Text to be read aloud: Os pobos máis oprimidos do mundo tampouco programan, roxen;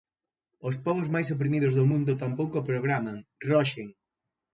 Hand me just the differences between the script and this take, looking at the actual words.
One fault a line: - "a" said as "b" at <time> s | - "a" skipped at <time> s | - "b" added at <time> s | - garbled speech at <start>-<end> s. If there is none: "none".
none